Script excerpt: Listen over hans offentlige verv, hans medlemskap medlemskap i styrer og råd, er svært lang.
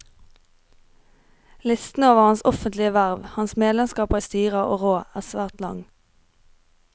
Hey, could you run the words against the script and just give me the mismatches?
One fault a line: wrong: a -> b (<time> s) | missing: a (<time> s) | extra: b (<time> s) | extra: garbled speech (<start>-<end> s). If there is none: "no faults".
missing: medlemskap (4.1 s)